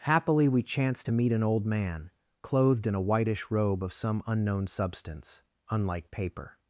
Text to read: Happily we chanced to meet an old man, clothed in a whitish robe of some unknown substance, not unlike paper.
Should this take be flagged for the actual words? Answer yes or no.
yes